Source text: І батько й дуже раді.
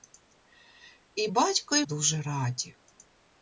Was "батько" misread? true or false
false